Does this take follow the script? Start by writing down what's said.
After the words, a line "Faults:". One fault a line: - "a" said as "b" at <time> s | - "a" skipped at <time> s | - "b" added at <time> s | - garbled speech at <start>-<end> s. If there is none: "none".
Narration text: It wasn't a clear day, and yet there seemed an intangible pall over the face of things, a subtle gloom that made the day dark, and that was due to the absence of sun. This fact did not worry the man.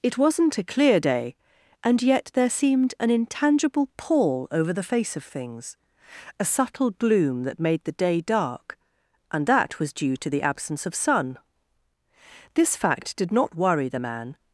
It wasn't a clear day, and yet there seemed an intangible pall over the face of things, a subtle gloom that made the day dark, and that was due to the absence of sun. This fact did not worry the man.
Faults:
none